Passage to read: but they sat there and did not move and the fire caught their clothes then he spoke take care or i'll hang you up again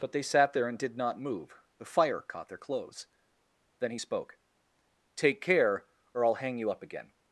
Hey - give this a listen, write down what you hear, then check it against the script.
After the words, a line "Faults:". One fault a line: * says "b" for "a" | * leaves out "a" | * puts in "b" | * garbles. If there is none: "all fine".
but they sat there and did not move the fire caught their clothes then he spoke take care or i'll hang you up again
Faults:
* leaves out "and"